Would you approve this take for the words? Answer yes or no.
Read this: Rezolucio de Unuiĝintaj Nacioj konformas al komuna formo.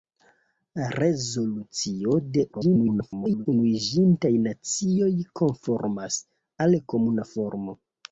no